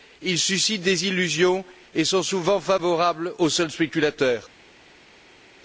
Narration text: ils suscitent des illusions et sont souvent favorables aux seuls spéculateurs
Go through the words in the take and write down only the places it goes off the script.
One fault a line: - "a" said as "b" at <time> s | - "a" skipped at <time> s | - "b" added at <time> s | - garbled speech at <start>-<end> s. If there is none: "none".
none